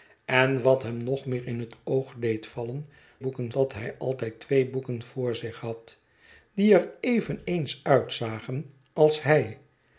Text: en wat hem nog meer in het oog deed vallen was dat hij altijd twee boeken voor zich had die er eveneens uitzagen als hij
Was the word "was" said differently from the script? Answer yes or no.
yes